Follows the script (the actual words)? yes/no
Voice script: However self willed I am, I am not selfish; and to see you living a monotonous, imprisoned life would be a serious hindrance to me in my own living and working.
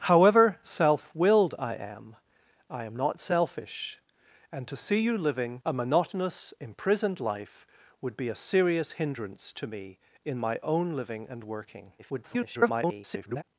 no